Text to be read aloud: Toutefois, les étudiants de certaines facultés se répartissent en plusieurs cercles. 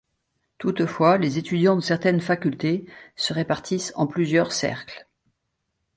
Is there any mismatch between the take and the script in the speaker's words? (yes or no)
no